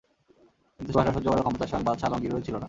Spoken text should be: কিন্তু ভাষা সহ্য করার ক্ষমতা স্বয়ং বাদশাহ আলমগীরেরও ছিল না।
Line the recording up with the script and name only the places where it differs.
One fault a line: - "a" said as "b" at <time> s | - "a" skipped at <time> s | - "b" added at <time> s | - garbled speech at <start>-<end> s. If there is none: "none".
none